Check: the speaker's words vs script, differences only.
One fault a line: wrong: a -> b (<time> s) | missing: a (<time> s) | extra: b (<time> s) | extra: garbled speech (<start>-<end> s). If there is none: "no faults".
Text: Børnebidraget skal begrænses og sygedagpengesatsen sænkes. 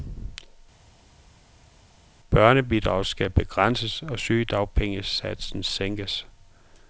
no faults